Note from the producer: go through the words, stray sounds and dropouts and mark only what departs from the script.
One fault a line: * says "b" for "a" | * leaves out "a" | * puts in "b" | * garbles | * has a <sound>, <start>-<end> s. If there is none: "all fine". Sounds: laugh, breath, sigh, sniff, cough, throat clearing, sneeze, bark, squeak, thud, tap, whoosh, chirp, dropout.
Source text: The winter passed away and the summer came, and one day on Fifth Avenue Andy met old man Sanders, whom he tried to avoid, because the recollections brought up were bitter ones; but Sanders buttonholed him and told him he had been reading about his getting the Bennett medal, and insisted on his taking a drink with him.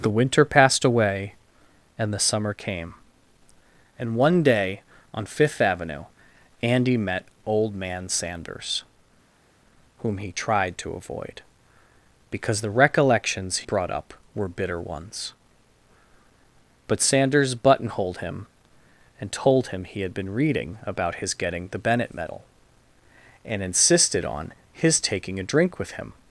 all fine